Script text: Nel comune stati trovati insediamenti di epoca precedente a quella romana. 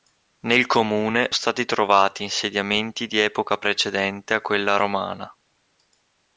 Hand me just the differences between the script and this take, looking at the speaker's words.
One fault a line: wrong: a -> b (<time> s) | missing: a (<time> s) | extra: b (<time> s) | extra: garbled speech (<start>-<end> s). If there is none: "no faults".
no faults